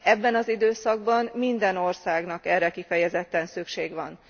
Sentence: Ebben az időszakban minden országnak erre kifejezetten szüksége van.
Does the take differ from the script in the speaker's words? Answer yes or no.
no